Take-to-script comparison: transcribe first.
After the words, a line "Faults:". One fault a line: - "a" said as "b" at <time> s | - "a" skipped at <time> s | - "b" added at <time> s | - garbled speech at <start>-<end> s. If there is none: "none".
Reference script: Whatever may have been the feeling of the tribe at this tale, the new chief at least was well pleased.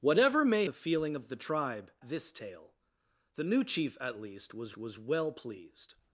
Whatever may the feeling of the tribe this tale, the new chief at least was was well pleased.
Faults:
- "have been" skipped at 0.7 s
- "at" skipped at 1.9 s
- "was" added at 4.7 s